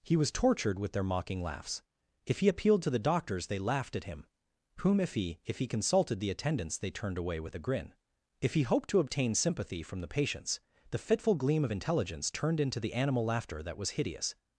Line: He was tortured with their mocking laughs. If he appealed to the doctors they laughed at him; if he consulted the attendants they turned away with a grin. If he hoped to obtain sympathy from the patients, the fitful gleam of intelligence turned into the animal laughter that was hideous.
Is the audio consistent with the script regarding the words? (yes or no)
no